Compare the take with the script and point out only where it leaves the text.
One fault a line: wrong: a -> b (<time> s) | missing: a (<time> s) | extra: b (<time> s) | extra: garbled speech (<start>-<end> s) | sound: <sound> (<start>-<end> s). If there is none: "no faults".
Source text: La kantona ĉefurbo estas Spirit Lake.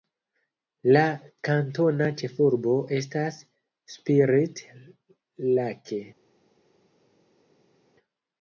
no faults